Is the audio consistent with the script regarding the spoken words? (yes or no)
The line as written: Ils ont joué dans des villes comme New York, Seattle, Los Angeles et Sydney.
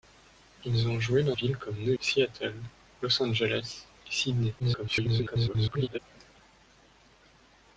no